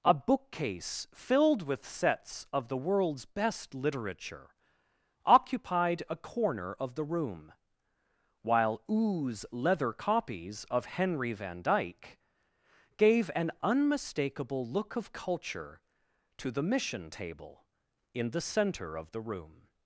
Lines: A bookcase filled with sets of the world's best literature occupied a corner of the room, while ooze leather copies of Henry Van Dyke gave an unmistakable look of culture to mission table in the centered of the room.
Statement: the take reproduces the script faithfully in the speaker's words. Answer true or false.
false